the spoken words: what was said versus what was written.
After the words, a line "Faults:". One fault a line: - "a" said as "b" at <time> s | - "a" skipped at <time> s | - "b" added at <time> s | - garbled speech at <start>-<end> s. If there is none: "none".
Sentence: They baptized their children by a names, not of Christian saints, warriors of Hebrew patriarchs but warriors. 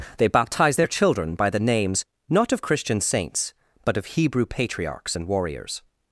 They baptized their children by the names, not of Christian saints, but of Hebrew patriarchs and warriors.
Faults:
- "a" said as "the" at 1.5 s
- "warriors" said as "but" at 3.8 s
- "but" said as "and" at 5.2 s